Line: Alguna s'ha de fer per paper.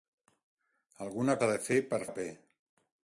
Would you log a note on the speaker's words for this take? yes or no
no